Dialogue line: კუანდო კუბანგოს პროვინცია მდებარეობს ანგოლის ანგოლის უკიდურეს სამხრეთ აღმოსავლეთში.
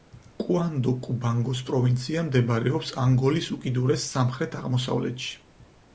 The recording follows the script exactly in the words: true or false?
false